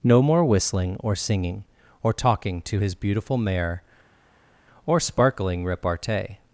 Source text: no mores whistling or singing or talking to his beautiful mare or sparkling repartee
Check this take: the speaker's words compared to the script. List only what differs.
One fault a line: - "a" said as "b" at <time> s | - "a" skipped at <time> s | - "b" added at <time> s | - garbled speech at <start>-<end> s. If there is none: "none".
- "mores" said as "more" at 0.2 s